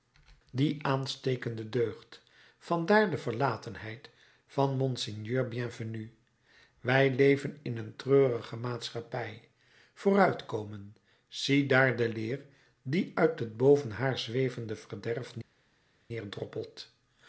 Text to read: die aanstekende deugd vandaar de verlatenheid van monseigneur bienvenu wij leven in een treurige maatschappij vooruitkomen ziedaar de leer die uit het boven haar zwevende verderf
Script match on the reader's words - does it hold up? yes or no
yes